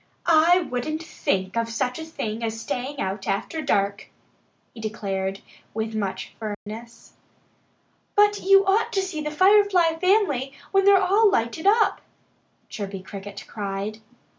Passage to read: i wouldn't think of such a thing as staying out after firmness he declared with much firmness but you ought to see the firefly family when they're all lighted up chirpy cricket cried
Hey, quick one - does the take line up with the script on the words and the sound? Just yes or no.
no